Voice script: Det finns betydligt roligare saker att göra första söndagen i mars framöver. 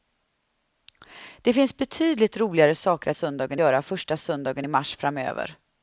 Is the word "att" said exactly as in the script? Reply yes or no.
no